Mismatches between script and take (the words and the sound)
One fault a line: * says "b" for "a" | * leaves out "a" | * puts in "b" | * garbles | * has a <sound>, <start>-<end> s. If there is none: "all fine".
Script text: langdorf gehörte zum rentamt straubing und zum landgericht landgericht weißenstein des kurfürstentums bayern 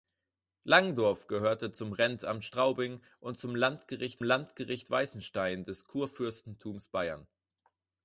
all fine